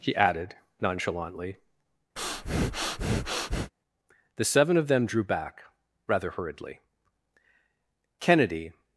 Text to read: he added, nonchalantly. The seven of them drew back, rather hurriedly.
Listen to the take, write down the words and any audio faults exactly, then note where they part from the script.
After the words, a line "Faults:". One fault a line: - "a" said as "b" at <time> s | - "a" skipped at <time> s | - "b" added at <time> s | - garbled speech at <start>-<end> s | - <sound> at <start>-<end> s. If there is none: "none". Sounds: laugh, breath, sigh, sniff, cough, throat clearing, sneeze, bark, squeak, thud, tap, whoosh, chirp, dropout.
he added, nonchalantly. The seven of them drew back, rather hurriedly. Kennedy
Faults:
- breath at 2.2-3.7 s
- "Kennedy" added at 8.2 s